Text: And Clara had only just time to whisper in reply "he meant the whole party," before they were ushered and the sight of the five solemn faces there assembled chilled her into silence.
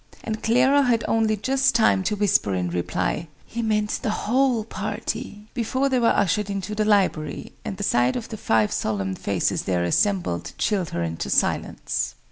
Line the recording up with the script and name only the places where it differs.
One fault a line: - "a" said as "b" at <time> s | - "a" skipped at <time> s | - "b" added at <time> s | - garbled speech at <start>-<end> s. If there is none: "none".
- "into the library" added at 6.5 s